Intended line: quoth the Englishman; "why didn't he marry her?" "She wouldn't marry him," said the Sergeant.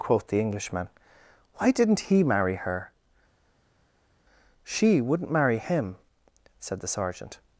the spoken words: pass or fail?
pass